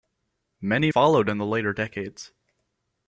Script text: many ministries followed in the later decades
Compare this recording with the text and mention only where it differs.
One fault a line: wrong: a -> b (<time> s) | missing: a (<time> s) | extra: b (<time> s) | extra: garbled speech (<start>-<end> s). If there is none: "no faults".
missing: ministries (0.9 s)